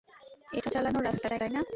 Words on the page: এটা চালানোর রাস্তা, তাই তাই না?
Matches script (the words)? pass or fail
pass